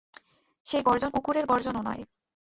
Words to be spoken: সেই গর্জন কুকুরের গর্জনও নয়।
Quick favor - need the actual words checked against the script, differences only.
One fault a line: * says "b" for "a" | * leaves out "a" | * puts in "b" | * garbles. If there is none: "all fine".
all fine